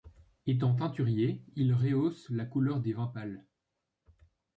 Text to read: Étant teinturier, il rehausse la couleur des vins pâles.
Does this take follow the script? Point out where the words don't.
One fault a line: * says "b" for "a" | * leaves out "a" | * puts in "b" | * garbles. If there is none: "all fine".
all fine